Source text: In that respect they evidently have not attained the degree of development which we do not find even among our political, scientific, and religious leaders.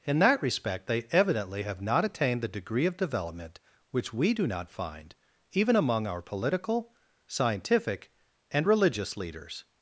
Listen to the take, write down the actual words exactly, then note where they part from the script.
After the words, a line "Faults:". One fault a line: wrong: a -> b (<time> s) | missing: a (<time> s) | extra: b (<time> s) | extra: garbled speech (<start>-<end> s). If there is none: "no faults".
In that respect they evidently have not attained the degree of development which we do not find even among our political, scientific, and religious leaders.
Faults:
no faults